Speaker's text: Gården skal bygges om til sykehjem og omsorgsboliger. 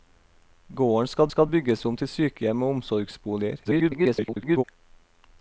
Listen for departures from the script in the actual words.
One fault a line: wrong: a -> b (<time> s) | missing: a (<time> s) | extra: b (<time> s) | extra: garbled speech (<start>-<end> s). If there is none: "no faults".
extra: skal (1.3 s)
extra: garbled speech (3.6-4.6 s)